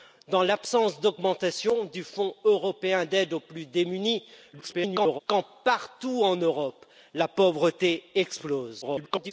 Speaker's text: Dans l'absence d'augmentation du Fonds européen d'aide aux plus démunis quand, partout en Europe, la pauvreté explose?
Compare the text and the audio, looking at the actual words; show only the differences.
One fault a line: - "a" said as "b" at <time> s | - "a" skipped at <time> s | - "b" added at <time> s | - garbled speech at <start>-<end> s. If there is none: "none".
- garbled speech at 4.5-5.2 s
- garbled speech at 8.8-9.3 s